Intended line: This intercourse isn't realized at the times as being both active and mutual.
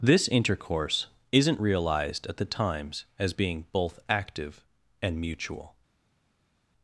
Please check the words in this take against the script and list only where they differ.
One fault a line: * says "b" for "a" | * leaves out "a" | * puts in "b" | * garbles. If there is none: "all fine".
all fine